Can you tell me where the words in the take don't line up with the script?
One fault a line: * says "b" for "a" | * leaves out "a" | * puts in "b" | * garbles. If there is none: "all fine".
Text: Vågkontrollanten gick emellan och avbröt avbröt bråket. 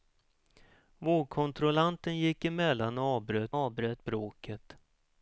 all fine